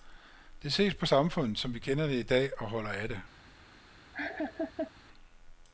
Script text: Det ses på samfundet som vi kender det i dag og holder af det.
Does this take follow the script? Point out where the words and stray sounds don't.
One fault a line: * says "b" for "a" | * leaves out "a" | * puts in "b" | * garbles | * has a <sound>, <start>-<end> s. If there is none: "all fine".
* has a laugh, 4.1-4.9 s